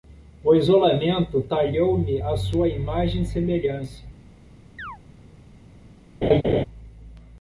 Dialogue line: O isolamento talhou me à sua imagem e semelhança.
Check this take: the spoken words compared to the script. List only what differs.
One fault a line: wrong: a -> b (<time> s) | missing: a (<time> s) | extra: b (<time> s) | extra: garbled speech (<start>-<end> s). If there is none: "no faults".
no faults